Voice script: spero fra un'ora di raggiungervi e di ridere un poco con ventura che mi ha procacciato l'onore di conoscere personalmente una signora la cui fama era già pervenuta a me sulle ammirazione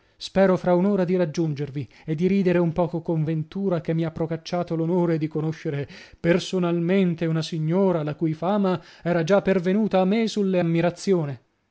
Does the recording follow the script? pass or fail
pass